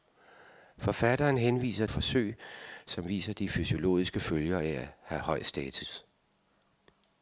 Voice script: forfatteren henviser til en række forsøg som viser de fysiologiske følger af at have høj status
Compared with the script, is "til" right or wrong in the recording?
wrong